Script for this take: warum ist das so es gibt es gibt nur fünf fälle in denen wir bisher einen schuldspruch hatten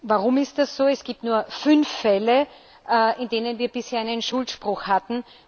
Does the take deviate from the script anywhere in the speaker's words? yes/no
yes